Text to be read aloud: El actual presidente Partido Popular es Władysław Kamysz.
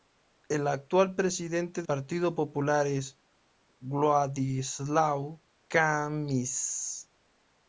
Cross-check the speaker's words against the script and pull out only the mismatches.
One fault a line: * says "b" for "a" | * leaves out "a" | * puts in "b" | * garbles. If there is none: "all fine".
all fine